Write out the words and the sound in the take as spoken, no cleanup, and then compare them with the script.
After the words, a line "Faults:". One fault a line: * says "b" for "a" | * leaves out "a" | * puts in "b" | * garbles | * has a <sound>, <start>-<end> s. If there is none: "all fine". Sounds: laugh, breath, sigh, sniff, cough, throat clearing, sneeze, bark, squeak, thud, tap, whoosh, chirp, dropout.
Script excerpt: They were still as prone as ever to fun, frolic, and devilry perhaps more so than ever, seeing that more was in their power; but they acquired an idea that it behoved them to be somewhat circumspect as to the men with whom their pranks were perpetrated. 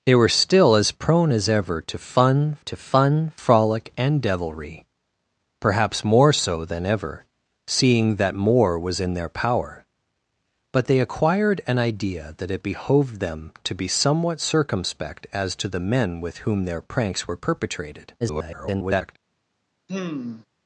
They were still as prone as ever to fun to fun, frolic, and devilry perhaps more so than ever, seeing that more was in their power; but they acquired an idea that it behoved them to be somewhat circumspect as to the men with whom their pranks were perpetrated. [garbled]
Faults:
* puts in "to fun"
* garbles
* has a sigh, 19.9-20.5 s